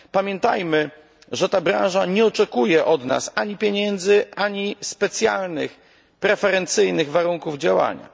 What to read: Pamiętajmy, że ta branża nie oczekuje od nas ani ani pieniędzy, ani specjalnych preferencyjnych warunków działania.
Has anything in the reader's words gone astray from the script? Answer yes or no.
yes